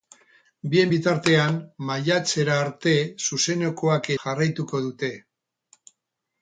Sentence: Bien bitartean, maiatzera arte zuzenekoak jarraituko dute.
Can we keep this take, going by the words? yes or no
yes